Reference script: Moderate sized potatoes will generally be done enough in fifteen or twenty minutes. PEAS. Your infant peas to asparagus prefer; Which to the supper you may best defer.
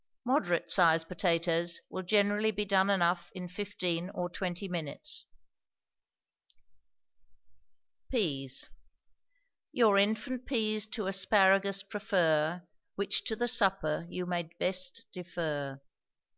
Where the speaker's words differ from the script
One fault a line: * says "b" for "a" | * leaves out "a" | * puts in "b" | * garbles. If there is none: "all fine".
all fine